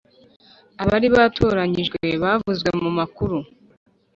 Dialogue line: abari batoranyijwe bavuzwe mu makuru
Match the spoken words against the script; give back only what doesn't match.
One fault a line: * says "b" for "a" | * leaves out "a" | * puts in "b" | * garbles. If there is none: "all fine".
all fine